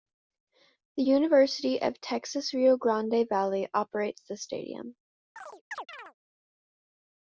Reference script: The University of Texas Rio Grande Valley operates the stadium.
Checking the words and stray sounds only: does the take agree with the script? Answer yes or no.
no